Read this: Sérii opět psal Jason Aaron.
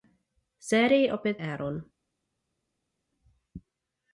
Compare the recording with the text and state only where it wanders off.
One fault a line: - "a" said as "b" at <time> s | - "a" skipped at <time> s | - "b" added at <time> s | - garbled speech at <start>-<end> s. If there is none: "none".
- "psal Jason" skipped at 1.4 s